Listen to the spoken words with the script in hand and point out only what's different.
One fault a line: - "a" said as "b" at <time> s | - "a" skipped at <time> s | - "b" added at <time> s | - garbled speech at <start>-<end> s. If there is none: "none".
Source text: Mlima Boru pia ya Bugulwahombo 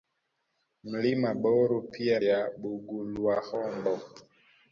none